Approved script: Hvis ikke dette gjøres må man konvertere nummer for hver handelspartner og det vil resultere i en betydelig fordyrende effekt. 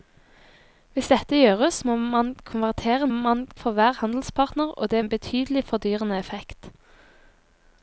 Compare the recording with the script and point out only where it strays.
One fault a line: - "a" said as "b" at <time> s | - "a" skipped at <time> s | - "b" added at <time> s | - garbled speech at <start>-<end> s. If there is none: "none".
- "ikke" skipped at 1.1 s
- "nummer" said as "man" at 3.1 s
- "vil resultere i" skipped at 5.0 s